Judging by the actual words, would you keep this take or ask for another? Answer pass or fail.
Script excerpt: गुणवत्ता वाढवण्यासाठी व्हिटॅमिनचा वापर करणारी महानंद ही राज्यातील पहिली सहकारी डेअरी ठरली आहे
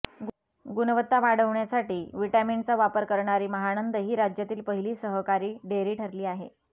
pass